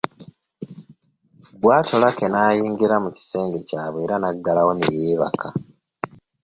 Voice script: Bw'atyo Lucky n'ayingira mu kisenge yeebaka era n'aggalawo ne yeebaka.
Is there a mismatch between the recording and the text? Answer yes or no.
yes